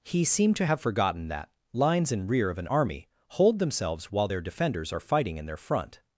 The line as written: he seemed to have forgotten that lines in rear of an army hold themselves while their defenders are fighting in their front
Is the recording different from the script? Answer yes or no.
no